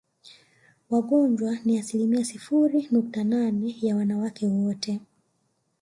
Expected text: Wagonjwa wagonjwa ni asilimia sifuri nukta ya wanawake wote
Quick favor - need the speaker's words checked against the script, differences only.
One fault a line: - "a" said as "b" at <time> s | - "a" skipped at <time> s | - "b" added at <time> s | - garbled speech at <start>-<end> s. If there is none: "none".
- "wagonjwa" skipped at 1.6 s
- "nane" added at 3.2 s